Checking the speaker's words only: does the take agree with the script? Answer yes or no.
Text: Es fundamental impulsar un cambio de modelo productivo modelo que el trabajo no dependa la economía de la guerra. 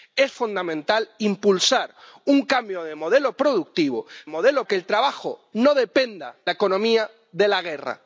yes